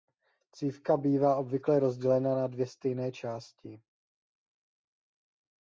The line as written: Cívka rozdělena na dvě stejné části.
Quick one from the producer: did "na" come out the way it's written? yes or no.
yes